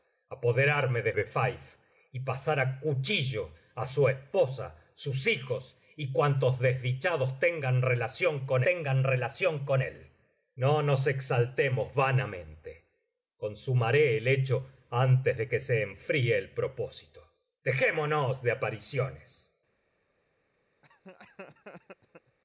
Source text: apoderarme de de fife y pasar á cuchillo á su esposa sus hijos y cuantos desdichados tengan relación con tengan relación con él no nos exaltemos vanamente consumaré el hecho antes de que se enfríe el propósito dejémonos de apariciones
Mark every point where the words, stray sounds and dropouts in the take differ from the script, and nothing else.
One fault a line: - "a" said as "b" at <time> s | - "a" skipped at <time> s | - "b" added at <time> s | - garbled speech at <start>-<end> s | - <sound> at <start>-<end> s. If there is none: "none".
- laugh at 20.8-22.4 s